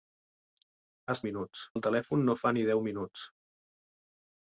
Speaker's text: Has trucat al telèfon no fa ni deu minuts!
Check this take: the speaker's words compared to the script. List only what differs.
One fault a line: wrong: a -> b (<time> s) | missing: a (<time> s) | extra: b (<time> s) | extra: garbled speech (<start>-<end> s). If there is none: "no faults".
wrong: trucat -> minuts (1.3 s)